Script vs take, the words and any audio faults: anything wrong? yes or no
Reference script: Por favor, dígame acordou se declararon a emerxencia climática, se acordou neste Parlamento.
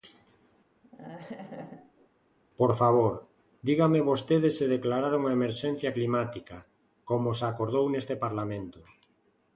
yes